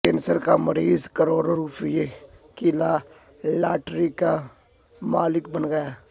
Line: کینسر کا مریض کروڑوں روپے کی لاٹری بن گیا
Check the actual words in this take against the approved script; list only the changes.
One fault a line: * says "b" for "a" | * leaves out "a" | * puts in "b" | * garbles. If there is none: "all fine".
* puts in "کا مالک"